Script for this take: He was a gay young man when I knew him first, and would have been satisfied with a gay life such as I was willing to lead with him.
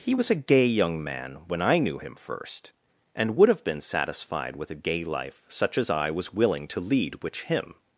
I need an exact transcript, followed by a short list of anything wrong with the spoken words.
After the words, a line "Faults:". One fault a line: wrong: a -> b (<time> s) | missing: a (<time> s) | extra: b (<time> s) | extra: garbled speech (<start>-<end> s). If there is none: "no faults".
He was a gay young man when I knew him first, and would have been satisfied with a gay life such as I was willing to lead which him.
Faults:
wrong: with -> which (7.2 s)